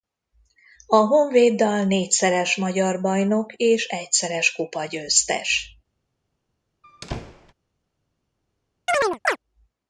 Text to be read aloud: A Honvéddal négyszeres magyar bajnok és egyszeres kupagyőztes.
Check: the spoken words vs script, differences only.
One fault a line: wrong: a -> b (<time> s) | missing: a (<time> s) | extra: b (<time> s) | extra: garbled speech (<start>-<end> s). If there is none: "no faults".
no faults